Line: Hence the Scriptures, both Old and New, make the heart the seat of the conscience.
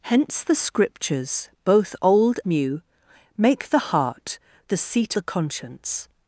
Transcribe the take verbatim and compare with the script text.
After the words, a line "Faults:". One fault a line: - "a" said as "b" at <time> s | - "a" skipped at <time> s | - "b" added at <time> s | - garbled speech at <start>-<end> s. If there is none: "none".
Hence the Scriptures, both Old New, make the heart the seat the conscience.
Faults:
- "and" skipped at 2.4 s
- "of" skipped at 5.2 s